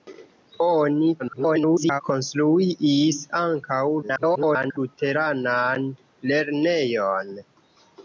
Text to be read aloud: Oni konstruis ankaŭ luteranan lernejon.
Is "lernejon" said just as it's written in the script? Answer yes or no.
yes